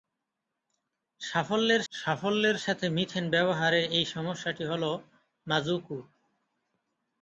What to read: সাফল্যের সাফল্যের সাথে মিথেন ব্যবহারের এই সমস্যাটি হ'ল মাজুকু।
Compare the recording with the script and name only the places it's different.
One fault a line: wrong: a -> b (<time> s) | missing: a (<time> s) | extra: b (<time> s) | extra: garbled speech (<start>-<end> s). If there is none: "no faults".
no faults